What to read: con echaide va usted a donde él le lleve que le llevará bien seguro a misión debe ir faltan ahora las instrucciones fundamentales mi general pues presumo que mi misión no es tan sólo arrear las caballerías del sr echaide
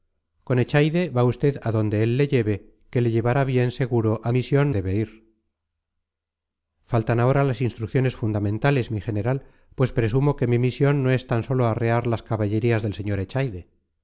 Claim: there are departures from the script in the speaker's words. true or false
false